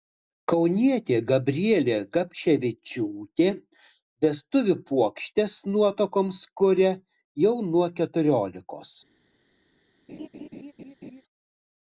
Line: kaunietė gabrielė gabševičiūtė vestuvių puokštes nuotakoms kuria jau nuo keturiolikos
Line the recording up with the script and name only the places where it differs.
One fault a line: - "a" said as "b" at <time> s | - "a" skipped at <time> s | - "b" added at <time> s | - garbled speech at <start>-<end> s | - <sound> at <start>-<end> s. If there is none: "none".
- laugh at 10.1-11.2 s